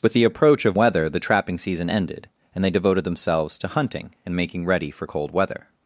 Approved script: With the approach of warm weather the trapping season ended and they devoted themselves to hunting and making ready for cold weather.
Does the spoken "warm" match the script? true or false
false